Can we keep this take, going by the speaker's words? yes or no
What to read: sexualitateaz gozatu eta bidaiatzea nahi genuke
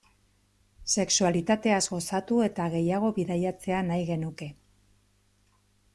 no